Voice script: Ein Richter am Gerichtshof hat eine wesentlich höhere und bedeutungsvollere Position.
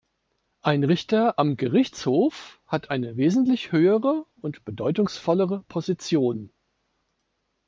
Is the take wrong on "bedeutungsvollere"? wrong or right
right